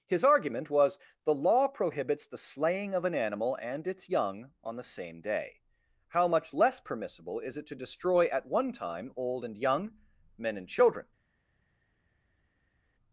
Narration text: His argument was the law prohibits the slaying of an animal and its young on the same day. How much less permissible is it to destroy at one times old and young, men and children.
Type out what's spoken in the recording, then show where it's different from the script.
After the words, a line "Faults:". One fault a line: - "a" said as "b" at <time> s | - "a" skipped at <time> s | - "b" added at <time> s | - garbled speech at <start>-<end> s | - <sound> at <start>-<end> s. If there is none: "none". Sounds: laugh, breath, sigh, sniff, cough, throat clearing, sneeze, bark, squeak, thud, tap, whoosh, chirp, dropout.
His argument was the law prohibits the slaying of an animal and its young on the same day. How much less permissible is it to destroy at one time old and young, men and children.
Faults:
- "times" said as "time" at 8.7 s